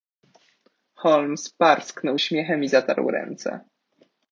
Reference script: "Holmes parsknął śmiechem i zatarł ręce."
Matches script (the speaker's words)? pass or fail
pass